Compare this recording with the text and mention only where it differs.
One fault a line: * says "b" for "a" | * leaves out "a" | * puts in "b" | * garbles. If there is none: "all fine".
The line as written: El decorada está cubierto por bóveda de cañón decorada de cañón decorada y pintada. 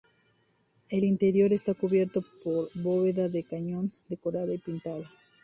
* says "interior" for "decorada"
* leaves out "de cañón decorada"